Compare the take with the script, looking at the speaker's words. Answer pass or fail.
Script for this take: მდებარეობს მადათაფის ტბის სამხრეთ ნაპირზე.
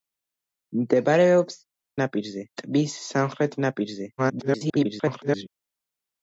fail